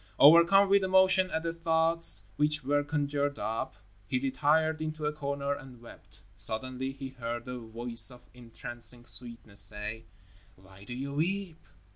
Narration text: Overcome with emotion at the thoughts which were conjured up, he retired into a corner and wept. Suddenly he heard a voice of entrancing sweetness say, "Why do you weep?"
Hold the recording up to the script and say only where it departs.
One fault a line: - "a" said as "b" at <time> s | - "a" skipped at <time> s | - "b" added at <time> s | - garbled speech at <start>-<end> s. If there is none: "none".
none